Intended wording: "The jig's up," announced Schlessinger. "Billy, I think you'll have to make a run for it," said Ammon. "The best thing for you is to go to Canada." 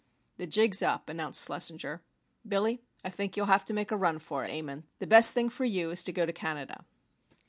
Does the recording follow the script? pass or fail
fail